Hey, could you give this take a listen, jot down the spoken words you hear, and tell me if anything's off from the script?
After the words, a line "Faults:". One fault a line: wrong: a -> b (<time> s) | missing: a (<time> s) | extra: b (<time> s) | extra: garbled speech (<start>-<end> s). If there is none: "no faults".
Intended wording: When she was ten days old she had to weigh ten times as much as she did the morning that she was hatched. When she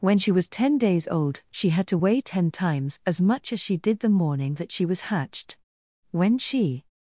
When she was ten days old she had to weigh ten times as much as she did the morning that she was hatched. When she
Faults:
no faults